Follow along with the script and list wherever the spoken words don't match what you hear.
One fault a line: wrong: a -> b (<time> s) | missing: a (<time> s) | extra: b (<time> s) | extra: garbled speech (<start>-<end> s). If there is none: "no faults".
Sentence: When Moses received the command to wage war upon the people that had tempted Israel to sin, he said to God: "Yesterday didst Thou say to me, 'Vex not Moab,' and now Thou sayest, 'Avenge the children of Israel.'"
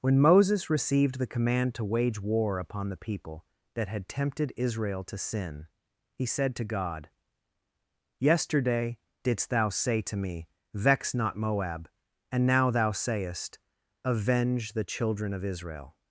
no faults